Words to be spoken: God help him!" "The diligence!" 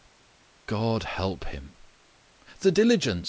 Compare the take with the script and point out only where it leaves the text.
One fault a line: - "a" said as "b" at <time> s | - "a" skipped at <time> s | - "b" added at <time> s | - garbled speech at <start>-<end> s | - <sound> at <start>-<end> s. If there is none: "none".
none